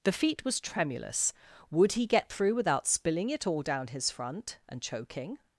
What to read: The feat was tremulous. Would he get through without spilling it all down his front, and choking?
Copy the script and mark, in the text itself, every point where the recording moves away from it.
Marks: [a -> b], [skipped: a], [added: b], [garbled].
The feat was tremulous. Would he get through without spilling it all down his front, and choking?